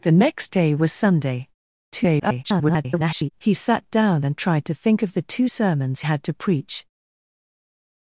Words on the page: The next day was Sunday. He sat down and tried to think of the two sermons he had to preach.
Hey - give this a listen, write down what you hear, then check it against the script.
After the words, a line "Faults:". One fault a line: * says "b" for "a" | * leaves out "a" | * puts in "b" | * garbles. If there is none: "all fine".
The next day was Sunday. [garbled] He sat down and tried to think of the two sermons had to preach.
Faults:
* garbles
* leaves out "he"